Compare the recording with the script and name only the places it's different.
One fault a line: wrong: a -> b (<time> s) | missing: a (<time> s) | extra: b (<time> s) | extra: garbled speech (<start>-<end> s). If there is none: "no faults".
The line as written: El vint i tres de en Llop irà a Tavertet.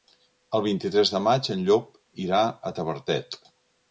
extra: maig (1.2 s)